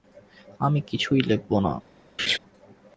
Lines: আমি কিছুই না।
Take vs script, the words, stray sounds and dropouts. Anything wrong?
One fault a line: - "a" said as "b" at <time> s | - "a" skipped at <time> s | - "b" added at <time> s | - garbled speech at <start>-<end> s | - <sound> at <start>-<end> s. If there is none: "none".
- "লেখব" added at 1.2 s
- laugh at 2.2-2.4 s